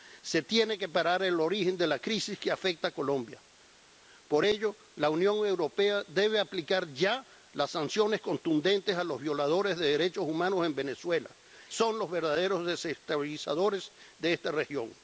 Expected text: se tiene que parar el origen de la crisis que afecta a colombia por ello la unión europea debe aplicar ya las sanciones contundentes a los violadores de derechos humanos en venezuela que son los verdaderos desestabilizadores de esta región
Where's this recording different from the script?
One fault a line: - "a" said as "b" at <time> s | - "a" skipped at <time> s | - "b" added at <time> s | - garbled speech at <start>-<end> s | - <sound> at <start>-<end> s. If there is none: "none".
- "que" skipped at 11.4 s